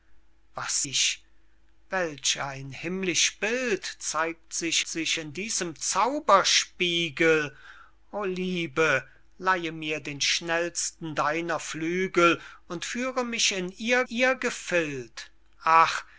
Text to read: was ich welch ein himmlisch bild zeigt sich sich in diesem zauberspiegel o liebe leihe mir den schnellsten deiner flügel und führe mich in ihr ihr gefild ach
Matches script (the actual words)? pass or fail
pass